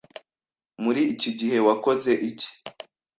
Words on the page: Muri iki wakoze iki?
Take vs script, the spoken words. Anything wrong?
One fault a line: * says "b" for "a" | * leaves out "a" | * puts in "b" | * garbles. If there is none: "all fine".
* puts in "gihe"